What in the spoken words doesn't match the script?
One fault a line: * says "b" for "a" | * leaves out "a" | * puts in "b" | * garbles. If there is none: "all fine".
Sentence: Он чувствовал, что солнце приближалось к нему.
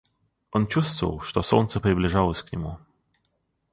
all fine